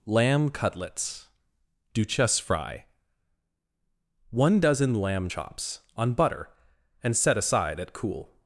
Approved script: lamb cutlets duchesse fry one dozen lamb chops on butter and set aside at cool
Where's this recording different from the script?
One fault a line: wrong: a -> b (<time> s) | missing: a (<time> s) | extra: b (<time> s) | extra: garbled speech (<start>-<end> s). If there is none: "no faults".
no faults